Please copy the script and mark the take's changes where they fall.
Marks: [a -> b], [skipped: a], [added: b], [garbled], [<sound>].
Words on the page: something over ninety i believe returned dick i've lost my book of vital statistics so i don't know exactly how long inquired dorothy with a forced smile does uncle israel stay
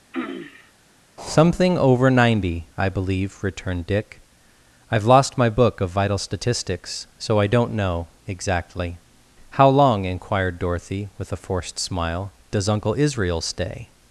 [throat clearing] something over ninety i believe returned dick i've lost my book of vital statistics so i don't know exactly how long inquired dorothy with a forced smile does uncle israel stay